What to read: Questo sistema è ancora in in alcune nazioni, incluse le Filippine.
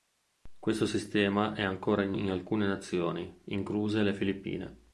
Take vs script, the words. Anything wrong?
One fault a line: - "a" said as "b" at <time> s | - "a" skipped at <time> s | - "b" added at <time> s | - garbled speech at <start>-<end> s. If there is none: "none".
none